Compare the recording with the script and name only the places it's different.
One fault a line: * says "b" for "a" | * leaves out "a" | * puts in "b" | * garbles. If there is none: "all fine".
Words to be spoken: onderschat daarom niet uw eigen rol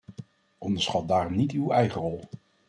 all fine